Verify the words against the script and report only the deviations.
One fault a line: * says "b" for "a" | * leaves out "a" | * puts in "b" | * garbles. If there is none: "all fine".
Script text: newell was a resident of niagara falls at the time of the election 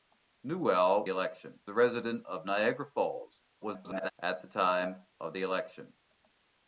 * says "election" for "was"
* garbles